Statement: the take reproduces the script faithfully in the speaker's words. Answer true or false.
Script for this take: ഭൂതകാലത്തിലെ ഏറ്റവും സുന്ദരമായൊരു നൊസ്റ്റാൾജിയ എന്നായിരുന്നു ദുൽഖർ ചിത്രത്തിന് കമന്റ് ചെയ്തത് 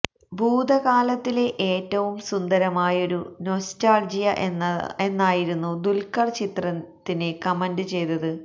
true